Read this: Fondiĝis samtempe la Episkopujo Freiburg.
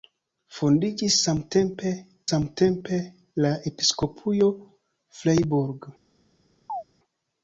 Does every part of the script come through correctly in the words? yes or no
no